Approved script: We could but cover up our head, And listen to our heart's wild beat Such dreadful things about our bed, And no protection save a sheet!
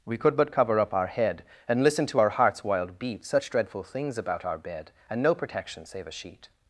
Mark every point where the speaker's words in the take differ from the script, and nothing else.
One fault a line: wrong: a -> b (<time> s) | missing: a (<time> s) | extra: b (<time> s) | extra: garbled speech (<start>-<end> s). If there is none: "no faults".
no faults